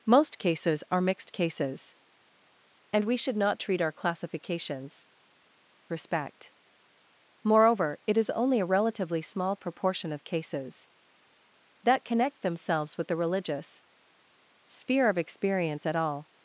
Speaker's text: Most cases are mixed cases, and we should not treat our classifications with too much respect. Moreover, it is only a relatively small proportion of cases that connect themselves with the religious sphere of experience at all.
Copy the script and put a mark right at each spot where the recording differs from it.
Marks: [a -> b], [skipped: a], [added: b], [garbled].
Most cases are mixed cases, and we should not treat our classifications [skipped: with too much] respect. Moreover, it is only a relatively small proportion of cases that connect themselves with the religious sphere of experience at all.